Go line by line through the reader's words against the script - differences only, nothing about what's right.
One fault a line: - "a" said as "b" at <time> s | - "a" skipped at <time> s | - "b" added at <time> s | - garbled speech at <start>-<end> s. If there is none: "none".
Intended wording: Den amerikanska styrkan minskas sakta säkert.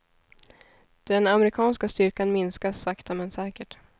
- "men" added at 3.1 s